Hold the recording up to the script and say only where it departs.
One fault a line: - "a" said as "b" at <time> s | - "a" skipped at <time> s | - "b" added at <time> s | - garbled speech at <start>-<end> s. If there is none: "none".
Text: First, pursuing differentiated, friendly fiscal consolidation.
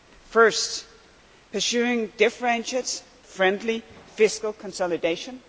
none